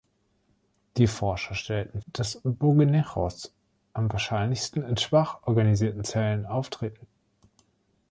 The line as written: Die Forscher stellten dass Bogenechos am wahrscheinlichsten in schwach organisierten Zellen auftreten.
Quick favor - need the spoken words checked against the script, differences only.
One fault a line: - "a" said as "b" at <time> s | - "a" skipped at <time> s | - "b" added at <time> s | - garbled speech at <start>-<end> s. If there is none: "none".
none